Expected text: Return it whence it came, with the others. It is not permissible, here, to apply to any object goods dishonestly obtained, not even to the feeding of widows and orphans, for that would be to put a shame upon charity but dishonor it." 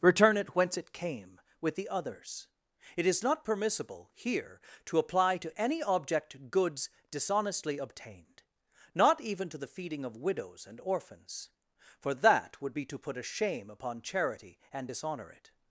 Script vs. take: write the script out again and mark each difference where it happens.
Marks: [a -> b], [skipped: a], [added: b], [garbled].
Return it whence it came, with the others. It is not permissible, here, to apply to any object goods dishonestly obtained, not even to the feeding of widows and orphans, for that would be to put a shame upon charity [but -> and] dishonor it."